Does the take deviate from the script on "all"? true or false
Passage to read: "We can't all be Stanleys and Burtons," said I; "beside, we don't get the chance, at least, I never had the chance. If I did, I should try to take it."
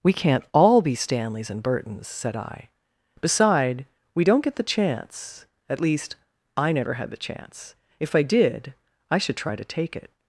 false